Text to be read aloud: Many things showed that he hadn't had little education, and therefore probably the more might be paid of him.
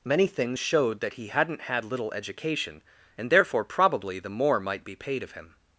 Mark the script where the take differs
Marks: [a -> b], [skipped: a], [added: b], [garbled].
Many things showed that he hadn't had little education, and therefore probably the more might be paid of him.